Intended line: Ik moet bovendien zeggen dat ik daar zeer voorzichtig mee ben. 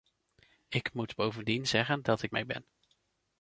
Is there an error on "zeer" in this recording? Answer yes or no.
yes